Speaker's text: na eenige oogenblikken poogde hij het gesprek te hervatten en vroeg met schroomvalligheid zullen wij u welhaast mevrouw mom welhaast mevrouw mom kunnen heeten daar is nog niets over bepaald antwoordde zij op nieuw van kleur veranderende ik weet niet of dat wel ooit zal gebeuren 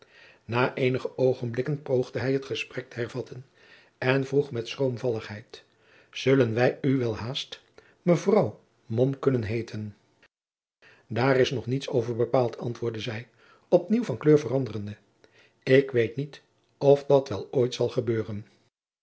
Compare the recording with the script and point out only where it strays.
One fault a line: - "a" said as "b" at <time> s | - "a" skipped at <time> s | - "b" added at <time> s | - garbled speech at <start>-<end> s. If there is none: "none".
- "welhaast mevrouw mom" skipped at 9.2 s